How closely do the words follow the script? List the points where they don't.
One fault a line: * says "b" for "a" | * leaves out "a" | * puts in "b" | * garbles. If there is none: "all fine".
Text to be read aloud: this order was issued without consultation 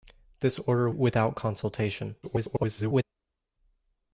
* leaves out "was issued"
* garbles